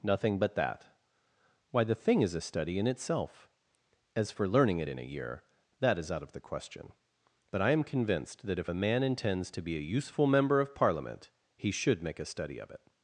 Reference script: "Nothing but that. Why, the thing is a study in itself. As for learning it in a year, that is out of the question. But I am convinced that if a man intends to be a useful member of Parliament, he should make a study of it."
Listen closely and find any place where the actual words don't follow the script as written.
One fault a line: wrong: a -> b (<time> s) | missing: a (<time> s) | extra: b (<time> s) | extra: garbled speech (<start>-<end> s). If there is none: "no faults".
no faults